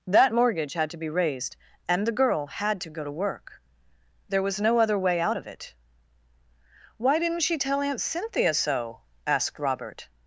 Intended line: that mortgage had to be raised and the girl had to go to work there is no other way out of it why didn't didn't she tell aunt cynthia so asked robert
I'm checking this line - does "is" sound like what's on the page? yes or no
no